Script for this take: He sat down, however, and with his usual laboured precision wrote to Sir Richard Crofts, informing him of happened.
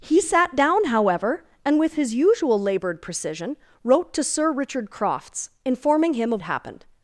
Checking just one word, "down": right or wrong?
right